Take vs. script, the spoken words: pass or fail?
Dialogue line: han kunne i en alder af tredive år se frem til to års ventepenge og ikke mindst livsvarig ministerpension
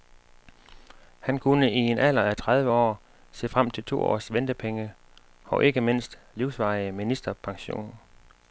pass